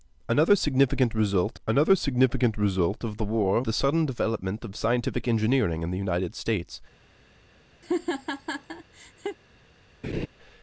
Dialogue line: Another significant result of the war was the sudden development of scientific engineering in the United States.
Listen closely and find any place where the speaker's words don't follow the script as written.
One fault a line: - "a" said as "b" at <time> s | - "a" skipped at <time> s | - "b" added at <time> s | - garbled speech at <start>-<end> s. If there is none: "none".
- "another significant result" added at 1.7 s
- "was" skipped at 3.6 s